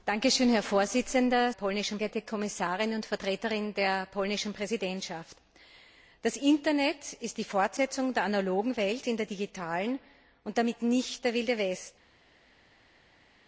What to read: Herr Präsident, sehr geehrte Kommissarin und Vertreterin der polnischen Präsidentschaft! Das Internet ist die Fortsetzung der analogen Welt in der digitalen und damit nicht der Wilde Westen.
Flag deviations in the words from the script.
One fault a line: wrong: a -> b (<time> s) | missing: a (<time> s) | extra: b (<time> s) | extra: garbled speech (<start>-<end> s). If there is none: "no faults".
wrong: sehr -> polnischen (1.5 s)